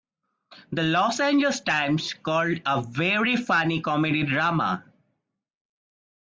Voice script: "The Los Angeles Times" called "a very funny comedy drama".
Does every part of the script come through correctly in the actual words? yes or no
yes